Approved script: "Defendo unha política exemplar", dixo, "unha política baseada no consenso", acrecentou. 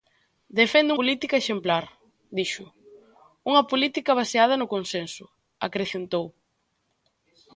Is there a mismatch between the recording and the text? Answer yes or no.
yes